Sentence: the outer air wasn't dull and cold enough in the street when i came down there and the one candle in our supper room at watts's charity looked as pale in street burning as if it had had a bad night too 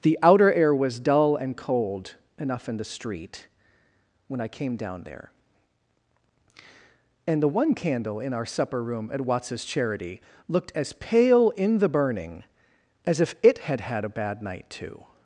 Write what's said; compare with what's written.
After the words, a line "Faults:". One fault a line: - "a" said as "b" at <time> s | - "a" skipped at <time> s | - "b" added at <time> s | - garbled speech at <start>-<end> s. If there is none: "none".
the outer air was dull and cold enough in the street when i came down there and the one candle in our supper room at watts's charity looked as pale in the burning as if it had had a bad night too
Faults:
- "wasn't" said as "was" at 0.7 s
- "street" said as "the" at 11.8 s